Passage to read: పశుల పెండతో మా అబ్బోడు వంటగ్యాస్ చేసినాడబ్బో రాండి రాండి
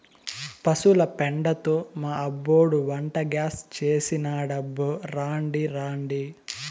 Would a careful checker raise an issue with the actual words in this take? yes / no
no